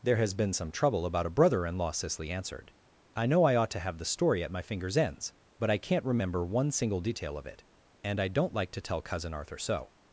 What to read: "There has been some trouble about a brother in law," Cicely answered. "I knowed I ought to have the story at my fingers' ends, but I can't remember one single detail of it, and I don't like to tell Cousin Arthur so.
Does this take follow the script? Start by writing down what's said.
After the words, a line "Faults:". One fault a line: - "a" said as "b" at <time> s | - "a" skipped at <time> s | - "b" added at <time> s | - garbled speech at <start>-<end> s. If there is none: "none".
"There has been some trouble about a brother in law," Cicely answered. "I know I ought to have the story at my fingers' ends, but I can't remember one single detail of it, and I don't like to tell Cousin Arthur so.
Faults:
- "knowed" said as "know" at 3.3 s